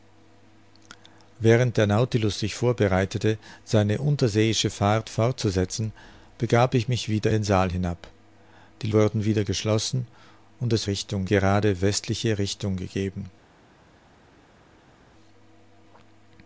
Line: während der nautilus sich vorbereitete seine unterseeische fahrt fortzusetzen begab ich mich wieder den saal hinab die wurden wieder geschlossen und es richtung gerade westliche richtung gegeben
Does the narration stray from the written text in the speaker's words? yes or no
no